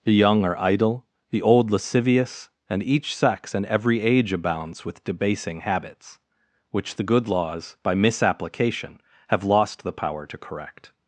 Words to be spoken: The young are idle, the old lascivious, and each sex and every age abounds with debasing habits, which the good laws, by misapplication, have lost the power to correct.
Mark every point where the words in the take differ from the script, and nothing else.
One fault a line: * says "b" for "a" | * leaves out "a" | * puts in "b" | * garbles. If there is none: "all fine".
all fine